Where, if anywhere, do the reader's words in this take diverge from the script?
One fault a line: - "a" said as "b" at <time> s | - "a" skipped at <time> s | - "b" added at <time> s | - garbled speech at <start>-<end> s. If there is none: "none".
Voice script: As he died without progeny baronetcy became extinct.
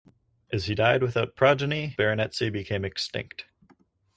none